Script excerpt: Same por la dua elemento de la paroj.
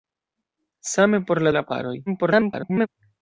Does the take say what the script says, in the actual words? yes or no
no